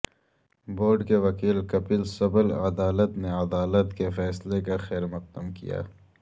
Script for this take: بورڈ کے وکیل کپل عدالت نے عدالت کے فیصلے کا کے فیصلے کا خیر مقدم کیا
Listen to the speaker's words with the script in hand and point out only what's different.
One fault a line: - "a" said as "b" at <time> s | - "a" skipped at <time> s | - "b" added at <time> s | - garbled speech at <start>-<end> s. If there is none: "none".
- "سبل" added at 2.1 s
- "کے فیصلے کا" skipped at 4.8 s